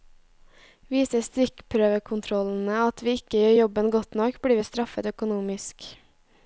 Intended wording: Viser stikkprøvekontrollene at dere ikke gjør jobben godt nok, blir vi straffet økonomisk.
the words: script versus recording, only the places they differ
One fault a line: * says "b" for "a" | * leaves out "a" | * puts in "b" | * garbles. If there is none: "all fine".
* says "vi" for "dere"